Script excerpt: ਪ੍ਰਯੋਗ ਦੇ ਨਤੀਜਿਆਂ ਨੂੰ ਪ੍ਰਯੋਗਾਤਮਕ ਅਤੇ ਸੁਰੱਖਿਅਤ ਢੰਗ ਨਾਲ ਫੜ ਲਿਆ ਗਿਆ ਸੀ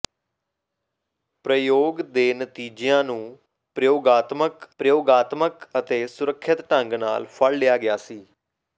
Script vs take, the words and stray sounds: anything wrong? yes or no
yes